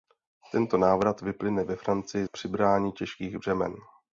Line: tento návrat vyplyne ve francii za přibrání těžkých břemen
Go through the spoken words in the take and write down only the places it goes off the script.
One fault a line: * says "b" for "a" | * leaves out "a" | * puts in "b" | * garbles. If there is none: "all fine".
* leaves out "za"